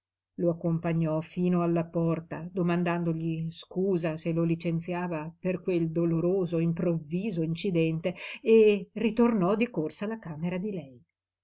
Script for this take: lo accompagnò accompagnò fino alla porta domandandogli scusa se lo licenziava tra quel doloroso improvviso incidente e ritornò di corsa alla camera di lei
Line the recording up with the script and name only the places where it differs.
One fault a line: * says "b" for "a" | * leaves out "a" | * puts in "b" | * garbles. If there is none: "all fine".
* leaves out "accompagnò"
* says "per" for "tra"